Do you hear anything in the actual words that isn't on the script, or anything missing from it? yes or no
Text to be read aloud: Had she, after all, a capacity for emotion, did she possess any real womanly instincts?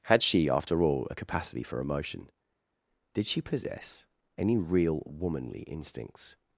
no